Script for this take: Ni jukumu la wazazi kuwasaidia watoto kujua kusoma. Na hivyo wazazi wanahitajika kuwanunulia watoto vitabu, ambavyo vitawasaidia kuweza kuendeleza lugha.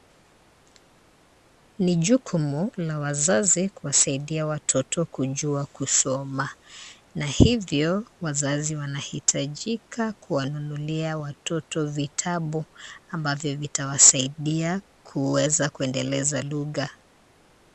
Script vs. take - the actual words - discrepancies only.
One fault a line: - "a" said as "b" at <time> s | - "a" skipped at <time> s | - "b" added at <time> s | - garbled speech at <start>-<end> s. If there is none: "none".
none